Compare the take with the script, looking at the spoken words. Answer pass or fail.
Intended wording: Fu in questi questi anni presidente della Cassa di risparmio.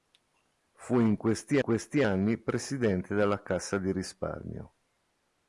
pass